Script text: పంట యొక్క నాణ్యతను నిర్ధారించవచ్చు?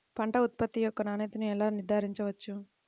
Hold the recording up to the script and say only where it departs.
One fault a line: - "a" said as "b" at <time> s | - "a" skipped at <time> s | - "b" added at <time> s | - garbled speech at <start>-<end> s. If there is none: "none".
- "ఉత్పత్తి" added at 0.4 s
- "ఎలా" added at 1.4 s